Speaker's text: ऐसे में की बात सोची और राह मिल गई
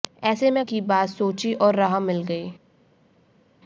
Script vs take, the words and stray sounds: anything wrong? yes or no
no